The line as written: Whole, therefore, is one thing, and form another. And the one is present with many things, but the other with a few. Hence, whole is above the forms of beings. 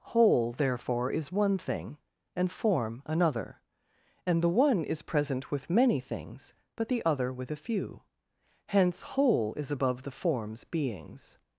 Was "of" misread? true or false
true